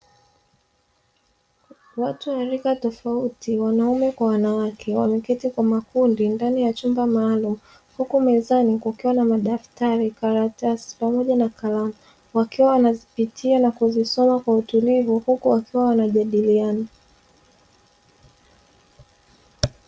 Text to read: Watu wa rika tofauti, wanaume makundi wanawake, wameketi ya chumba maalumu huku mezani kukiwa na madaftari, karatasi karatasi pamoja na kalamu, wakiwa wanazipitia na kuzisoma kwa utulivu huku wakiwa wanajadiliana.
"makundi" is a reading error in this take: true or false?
true